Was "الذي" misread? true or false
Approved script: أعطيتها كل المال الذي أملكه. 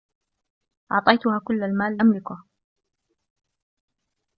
true